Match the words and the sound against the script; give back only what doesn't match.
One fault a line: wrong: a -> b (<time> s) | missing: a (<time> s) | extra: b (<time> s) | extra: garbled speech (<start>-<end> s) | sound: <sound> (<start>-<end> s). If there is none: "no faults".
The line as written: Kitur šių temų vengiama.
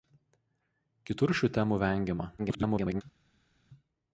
extra: garbled speech (2.4-3.0 s)